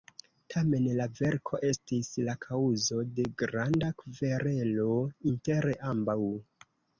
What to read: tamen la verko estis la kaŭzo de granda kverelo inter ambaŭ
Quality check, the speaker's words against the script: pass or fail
pass